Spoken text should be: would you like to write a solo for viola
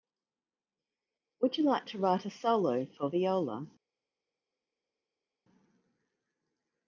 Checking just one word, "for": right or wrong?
right